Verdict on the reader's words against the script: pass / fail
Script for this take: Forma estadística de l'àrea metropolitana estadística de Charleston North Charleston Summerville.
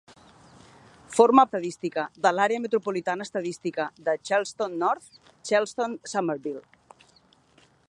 pass